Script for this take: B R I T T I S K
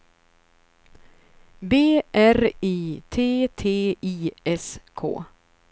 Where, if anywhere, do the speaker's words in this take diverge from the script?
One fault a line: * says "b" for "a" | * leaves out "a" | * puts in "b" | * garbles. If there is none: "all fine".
all fine